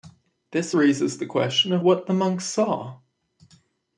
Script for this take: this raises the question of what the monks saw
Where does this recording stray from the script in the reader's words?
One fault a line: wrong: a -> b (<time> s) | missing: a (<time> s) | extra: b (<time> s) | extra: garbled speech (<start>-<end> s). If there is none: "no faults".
no faults